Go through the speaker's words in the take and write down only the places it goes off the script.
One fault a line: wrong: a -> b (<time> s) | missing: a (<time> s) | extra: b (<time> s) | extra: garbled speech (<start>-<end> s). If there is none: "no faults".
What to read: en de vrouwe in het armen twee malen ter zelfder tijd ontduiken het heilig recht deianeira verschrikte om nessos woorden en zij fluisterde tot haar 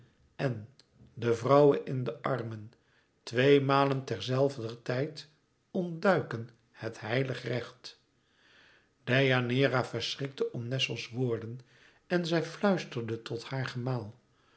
wrong: het -> de (2.0 s)